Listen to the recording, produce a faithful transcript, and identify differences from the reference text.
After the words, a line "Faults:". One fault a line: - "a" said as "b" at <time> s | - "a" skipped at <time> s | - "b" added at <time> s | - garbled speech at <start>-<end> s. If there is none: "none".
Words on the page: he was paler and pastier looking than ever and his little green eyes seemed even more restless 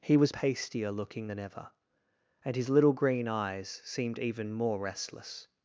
he was pastier looking than ever and his little green eyes seemed even more restless
Faults:
- "paler and" skipped at 0.3 s